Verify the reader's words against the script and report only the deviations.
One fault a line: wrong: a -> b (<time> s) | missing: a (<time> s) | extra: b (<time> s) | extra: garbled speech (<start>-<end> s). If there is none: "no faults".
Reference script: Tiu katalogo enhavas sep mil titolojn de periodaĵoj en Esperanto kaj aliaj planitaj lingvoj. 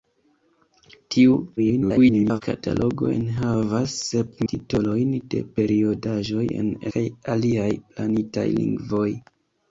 extra: garbled speech (1.6-2.4 s)
missing: mil (4.4 s)
missing: Esperanto (6.7 s)